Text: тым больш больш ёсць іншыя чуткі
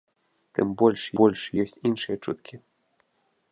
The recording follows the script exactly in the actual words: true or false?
true